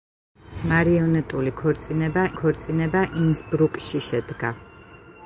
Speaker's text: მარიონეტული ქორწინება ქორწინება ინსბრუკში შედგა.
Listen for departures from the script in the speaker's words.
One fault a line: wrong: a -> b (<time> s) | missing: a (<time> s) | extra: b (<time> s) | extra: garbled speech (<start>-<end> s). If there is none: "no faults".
no faults